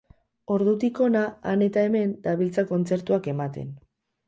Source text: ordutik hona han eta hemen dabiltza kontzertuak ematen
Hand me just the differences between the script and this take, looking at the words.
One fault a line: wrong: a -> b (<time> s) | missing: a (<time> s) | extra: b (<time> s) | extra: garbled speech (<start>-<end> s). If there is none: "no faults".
no faults